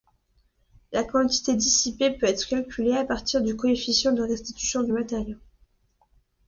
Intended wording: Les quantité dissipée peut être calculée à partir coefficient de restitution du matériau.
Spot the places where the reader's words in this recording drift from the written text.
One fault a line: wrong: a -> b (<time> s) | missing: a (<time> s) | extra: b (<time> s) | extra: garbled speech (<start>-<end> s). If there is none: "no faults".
wrong: Les -> La (0.9 s)
extra: du (3.4 s)